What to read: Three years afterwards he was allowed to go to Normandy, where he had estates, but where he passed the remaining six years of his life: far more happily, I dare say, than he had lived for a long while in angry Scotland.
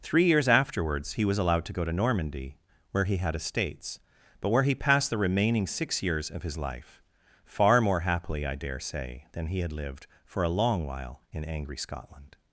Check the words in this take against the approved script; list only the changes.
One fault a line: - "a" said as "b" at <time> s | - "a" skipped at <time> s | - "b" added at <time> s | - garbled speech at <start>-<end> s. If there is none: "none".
none